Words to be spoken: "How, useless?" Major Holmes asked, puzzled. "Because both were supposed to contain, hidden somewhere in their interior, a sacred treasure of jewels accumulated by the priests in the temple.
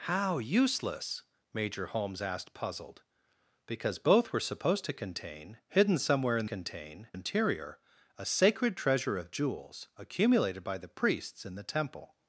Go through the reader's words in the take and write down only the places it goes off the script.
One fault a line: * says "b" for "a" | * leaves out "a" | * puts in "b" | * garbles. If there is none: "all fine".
* says "contain" for "their"